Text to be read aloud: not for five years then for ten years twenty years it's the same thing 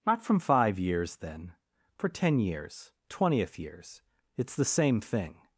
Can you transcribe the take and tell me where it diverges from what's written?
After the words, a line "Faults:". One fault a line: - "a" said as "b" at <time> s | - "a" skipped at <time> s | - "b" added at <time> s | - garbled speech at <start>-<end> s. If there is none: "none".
not from five years then for ten years twentieth years it's the same thing
Faults:
- "for" said as "from" at 0.2 s
- "twenty" said as "twentieth" at 3.1 s